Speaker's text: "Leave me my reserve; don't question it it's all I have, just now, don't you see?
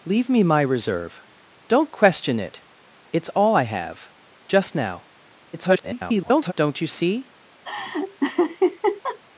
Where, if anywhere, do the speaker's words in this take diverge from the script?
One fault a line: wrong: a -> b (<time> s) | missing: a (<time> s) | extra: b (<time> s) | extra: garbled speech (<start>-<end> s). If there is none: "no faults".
extra: garbled speech (5.5-6.5 s)